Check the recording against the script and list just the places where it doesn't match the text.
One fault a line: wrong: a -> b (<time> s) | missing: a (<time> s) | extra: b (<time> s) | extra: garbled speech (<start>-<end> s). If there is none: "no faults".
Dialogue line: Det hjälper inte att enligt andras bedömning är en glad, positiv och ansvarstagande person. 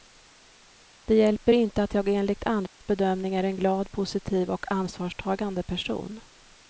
extra: jag (1.9 s)